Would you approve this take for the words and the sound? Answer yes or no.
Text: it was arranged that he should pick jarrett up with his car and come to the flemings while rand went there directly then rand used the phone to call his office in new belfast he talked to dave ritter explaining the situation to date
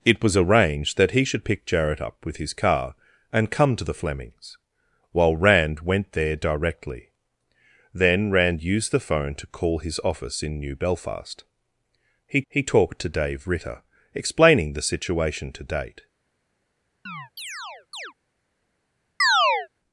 no